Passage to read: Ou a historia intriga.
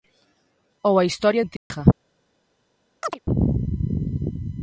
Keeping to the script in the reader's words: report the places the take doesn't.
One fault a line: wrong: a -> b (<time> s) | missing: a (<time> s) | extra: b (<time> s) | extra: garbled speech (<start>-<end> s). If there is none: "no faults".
no faults